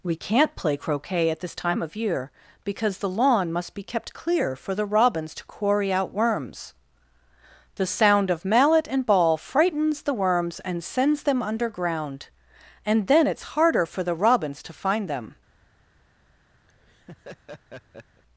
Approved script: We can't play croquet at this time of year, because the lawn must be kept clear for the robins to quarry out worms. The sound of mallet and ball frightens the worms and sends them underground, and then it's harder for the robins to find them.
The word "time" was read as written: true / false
true